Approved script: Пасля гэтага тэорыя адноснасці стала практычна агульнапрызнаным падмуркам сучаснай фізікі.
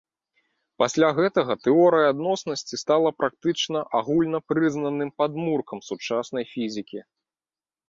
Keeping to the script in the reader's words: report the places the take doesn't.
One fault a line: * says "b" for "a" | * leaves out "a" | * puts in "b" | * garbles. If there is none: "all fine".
all fine